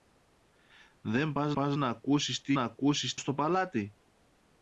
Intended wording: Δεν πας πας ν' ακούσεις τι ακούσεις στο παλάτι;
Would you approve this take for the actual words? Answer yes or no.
yes